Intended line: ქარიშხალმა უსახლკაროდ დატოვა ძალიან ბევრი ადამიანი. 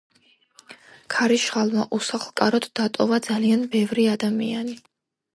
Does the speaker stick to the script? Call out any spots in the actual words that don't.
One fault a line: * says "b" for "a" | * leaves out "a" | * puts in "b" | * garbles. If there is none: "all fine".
all fine